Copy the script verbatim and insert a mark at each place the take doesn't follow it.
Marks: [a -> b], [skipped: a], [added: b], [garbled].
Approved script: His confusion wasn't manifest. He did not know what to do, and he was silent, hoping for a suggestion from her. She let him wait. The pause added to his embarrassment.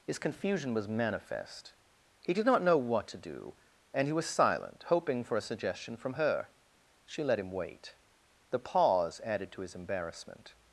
His confusion [wasn't -> was] manifest. He did not know what to do, and he was silent, hoping for a suggestion from her. She let him wait. The pause added to his embarrassment.